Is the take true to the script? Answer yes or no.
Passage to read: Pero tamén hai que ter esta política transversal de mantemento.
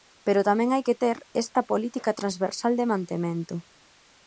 yes